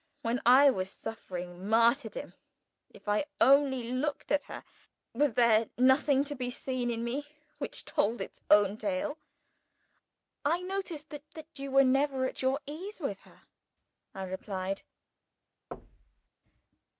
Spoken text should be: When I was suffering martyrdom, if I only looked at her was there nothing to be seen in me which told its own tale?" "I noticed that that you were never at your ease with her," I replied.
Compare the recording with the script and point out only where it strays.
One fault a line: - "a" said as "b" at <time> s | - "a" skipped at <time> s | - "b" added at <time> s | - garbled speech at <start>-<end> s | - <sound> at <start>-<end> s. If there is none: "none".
- thud at 15.7-16.3 s